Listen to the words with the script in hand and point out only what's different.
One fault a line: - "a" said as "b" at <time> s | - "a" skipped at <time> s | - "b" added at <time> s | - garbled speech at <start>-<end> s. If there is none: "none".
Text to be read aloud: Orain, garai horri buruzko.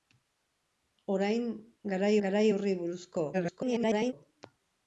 - "garai" added at 2.3 s
- garbled speech at 3.3-4.1 s